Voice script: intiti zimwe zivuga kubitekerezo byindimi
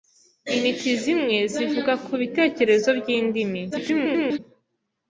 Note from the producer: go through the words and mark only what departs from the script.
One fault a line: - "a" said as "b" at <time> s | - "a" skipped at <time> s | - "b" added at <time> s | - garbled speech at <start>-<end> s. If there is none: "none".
- garbled speech at 3.7-4.4 s